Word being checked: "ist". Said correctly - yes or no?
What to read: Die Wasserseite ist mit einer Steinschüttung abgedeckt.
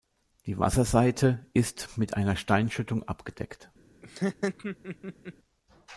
yes